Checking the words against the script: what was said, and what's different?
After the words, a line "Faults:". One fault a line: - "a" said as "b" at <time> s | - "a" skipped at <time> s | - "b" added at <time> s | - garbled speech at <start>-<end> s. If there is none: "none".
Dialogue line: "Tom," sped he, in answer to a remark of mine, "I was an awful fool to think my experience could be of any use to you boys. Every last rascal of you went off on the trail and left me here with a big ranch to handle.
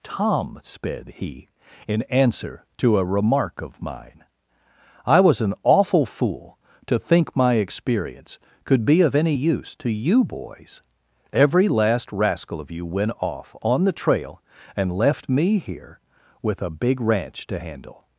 "Tom," sped he, in answer to a remark of mine, "I was an awful fool to think my experience could be of any use to you boys. Every last rascal of you went off on the trail and left me here with a big ranch to handle.
Faults:
none